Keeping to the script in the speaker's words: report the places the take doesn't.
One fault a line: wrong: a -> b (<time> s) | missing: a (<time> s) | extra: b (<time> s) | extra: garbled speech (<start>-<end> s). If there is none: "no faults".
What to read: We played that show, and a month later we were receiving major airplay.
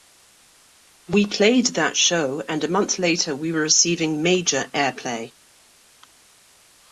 no faults